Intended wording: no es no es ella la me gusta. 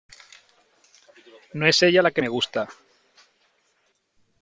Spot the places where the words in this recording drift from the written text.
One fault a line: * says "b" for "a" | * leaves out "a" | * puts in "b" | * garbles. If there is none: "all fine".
* leaves out "no es"
* puts in "que"